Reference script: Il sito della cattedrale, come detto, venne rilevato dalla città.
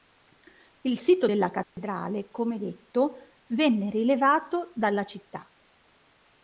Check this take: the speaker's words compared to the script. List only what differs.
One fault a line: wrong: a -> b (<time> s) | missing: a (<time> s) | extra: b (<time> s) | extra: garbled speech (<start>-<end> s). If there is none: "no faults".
no faults